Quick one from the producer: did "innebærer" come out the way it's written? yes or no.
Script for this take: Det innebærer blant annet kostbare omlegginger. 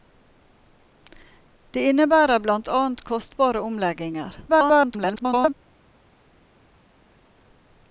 yes